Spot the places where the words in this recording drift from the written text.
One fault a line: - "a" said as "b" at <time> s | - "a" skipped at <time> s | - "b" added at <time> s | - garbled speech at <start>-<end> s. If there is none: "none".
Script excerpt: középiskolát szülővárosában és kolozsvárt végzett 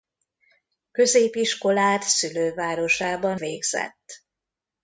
- "és kolozsvárt" skipped at 3.4 s